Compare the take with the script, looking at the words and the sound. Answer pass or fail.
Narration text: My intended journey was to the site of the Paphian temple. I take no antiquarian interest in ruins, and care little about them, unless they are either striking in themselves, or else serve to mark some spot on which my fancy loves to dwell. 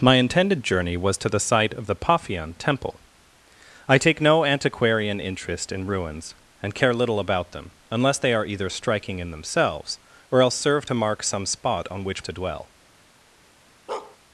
fail